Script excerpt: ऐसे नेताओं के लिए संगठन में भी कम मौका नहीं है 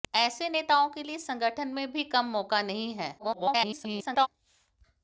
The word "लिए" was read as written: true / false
true